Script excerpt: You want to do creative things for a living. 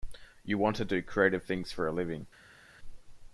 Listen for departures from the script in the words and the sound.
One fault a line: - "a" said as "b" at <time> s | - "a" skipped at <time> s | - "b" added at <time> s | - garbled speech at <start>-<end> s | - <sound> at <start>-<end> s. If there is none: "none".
none